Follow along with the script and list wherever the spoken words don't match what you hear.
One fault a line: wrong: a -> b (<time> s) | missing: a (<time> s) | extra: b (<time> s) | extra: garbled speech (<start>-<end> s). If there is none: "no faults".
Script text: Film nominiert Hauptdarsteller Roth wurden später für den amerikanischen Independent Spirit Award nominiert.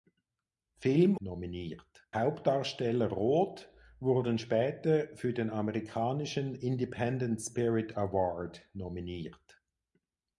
no faults